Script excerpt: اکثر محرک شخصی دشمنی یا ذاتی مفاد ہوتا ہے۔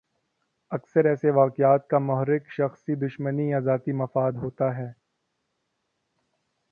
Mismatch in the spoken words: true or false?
true